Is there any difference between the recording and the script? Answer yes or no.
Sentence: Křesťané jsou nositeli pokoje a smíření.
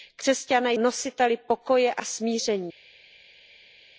yes